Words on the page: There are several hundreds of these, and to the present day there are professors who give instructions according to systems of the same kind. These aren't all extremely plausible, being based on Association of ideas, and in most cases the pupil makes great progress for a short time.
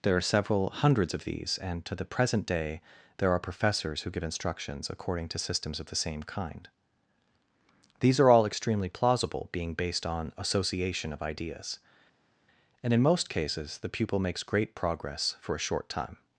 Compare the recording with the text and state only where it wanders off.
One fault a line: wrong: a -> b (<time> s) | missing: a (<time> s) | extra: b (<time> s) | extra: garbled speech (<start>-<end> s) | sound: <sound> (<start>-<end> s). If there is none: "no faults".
wrong: aren't -> are (8.2 s)